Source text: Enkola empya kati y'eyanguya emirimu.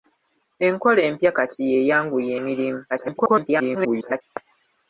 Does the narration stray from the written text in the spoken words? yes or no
yes